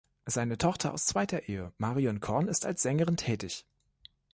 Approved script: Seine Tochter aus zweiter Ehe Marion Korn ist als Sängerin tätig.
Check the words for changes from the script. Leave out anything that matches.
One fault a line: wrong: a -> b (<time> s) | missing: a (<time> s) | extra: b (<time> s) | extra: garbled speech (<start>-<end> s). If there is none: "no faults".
no faults